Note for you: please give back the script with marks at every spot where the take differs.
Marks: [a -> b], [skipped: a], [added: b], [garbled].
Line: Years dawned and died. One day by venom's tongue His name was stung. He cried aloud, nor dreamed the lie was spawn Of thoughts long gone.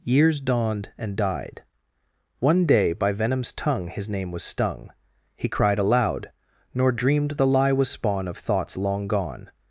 Years dawned and died. One day by venom's tongue His name was stung. He cried aloud, nor dreamed the lie was spawn Of thoughts long gone.